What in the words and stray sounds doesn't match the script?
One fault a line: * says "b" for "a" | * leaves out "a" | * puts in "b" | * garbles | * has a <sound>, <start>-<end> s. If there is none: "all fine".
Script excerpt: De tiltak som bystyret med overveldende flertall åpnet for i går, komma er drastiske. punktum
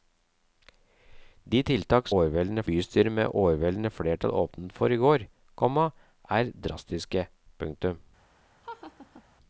* says "overveldende" for "som"
* has a laugh, 8.6-9.2 s